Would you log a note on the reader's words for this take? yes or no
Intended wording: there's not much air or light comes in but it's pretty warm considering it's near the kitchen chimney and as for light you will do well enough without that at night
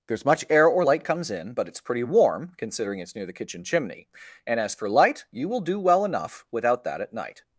yes